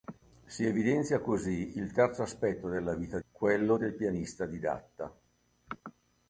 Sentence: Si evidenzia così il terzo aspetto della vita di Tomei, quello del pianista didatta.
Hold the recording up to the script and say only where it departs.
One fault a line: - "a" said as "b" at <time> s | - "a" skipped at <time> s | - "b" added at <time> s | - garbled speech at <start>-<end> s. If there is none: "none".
- "di Tomei" skipped at 3.2 s